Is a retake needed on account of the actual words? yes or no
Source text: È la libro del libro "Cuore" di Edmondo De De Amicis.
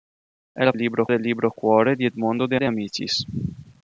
no